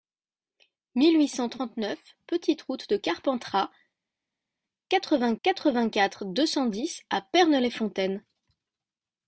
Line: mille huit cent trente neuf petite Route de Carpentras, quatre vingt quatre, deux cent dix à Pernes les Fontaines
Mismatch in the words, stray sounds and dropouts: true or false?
true